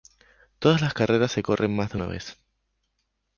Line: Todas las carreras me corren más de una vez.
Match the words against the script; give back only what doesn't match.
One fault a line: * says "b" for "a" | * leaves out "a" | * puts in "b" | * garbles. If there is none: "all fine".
* says "se" for "me"